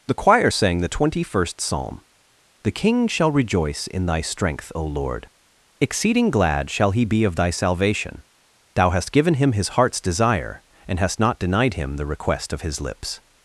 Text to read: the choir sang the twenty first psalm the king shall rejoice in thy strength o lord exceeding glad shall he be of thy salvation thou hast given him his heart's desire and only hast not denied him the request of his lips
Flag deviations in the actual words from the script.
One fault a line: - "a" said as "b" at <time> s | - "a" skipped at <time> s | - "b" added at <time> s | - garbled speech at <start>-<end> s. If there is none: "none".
- "only" skipped at 11.0 s